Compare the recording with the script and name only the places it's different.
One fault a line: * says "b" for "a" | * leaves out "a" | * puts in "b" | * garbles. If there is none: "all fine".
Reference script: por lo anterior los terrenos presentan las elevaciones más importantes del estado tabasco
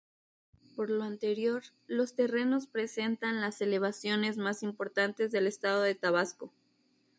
* puts in "de"